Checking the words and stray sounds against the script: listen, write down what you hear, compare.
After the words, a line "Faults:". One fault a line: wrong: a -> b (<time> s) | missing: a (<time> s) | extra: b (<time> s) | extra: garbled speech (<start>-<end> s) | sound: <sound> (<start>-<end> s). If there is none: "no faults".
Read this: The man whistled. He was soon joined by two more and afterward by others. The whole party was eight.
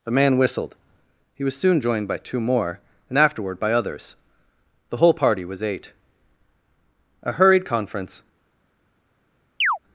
The man whistled. He was soon joined by two more and afterward by others. The whole party was eight. A hurried conference
Faults:
extra: A hurried conference (7.2 s)
sound: chirp (9.6-9.8 s)